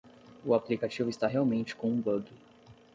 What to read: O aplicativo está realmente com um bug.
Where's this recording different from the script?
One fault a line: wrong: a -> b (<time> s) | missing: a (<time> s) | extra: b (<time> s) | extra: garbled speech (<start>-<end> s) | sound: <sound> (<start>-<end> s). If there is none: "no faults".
no faults